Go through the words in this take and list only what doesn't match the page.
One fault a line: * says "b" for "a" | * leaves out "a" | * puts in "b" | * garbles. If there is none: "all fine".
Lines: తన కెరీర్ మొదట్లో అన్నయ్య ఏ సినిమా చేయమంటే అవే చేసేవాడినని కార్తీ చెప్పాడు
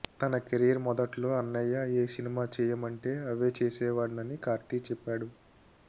all fine